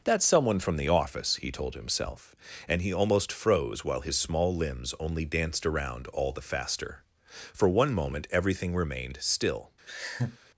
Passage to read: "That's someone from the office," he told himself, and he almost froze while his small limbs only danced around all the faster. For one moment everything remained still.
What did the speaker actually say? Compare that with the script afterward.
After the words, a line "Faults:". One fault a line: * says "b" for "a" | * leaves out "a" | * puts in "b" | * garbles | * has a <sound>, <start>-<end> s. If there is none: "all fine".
"That's someone from the office," he told himself, and he almost froze while his small limbs only danced around all the faster. For one moment everything remained still.
Faults:
* has a laugh, 9.9-10.4 s